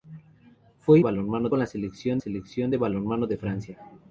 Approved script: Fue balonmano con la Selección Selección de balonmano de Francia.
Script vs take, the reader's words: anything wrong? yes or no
no